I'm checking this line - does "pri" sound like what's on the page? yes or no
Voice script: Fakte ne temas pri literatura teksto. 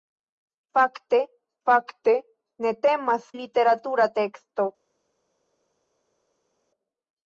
no